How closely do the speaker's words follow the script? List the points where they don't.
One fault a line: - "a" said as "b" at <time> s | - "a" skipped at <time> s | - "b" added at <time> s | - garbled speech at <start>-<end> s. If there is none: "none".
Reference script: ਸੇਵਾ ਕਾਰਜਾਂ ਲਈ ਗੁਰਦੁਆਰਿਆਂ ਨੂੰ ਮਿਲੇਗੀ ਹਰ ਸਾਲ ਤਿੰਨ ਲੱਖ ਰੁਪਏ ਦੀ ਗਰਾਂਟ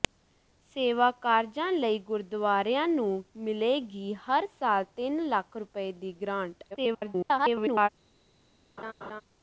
- garbled speech at 6.7-7.9 s